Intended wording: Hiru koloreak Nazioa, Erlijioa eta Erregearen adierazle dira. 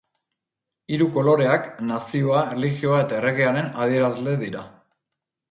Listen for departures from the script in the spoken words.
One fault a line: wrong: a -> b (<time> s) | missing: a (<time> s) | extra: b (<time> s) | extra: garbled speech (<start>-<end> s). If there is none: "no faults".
no faults